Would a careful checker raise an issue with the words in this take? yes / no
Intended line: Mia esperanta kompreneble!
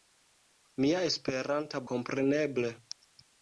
no